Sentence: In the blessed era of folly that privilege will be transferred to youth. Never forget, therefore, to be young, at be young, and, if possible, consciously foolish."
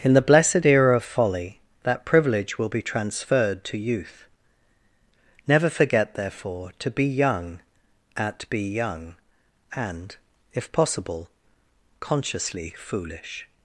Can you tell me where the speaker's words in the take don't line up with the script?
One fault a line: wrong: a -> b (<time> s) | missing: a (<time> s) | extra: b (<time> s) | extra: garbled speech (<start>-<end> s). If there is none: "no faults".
no faults